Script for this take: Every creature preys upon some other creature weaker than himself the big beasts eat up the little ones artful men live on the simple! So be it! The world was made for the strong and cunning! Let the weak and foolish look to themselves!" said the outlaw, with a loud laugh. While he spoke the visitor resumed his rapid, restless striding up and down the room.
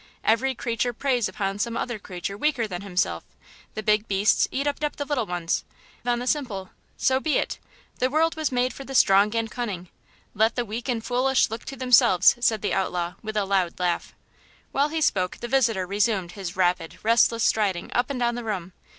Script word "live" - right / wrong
wrong